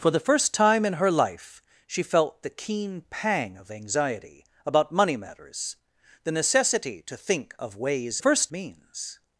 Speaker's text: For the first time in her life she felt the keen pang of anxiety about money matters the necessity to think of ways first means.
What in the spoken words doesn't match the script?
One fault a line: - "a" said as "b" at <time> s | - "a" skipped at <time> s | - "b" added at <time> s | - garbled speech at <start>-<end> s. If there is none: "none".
none